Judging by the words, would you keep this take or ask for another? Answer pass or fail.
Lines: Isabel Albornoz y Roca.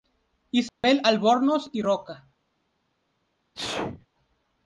pass